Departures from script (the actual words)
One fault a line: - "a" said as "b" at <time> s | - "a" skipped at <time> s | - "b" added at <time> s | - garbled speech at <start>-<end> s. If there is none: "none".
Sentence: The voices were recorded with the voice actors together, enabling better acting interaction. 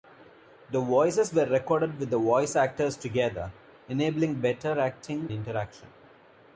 none